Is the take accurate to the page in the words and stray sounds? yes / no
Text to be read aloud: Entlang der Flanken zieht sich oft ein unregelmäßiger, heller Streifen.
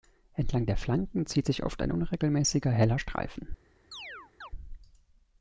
no